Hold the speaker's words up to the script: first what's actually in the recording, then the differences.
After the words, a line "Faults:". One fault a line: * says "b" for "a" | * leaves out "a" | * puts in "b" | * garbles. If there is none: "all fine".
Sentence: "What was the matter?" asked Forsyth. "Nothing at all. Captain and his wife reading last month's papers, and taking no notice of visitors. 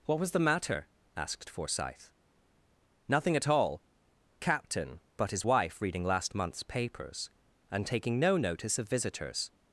"What was the matter?" asked Forsyth. "Nothing at all. Captain but his wife reading last month's papers, and taking no notice of visitors.
Faults:
* says "but" for "and"